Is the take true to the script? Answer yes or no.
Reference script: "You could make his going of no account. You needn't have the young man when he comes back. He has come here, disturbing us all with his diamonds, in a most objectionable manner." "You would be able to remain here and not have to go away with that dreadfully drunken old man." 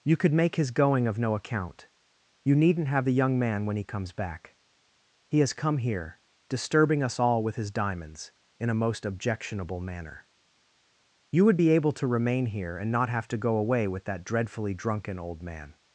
yes